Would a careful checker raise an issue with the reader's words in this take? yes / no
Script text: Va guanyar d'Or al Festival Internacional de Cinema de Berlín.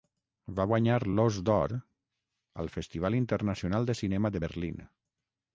yes